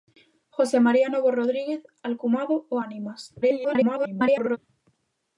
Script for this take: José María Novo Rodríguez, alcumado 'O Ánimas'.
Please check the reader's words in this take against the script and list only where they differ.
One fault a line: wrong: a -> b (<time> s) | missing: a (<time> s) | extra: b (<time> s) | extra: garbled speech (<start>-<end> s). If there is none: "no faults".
extra: garbled speech (3.4-4.6 s)